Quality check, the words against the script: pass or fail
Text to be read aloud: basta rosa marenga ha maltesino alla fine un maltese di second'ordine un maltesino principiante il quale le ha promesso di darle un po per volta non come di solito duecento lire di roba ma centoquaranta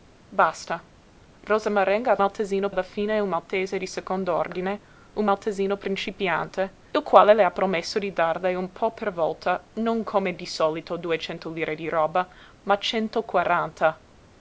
pass